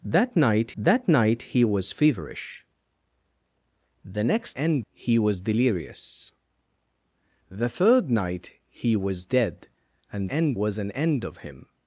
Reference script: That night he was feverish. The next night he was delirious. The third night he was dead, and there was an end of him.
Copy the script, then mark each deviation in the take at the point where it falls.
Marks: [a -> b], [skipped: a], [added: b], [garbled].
That night [added: that night] he was feverish. The next [night -> end] he was delirious. The third night he was dead, and [there -> end] was an end of him.